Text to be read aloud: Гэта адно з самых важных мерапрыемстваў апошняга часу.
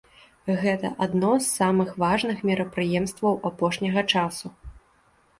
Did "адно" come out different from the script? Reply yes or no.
no